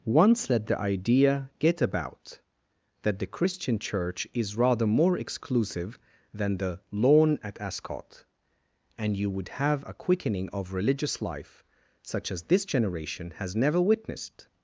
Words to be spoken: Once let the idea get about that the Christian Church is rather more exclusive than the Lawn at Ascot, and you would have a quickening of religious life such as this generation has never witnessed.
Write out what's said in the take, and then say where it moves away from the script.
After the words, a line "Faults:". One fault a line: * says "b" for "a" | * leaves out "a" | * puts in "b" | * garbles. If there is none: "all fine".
Once let the idea get about that the Christian Church is rather more exclusive than the Lawn at Ascot, and you would have a quickening of religious life such as this generation has never witnessed.
Faults:
all fine